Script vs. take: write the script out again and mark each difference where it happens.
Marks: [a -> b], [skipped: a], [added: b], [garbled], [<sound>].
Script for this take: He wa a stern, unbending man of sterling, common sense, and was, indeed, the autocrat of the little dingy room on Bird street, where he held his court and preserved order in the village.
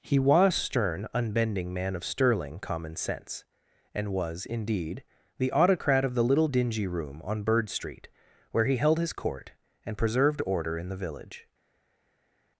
He [wa a -> was] stern, unbending man of sterling, common sense, and was, indeed, the autocrat of the little dingy room on Bird street, where he held his court and preserved order in the village.